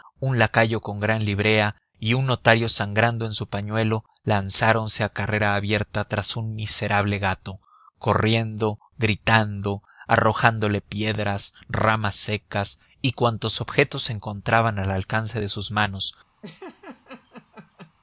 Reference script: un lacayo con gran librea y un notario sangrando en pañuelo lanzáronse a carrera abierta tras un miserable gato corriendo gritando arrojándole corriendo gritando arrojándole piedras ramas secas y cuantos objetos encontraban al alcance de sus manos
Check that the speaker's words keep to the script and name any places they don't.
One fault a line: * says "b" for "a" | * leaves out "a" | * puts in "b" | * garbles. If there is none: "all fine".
* puts in "su"
* leaves out "corriendo gritando arrojándole"